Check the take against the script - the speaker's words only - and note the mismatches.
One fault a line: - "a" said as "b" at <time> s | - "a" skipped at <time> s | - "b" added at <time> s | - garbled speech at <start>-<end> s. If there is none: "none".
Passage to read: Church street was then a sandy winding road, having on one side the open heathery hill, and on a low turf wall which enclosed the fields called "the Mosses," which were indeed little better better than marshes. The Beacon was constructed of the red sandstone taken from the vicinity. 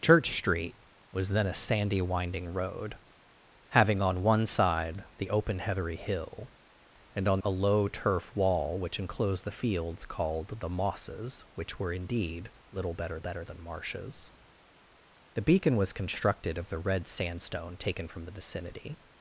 none